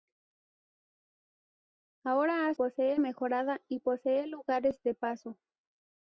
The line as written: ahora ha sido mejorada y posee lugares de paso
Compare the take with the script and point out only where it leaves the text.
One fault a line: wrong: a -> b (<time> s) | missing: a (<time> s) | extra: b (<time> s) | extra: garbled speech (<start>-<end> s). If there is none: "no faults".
wrong: sido -> posee (2.5 s)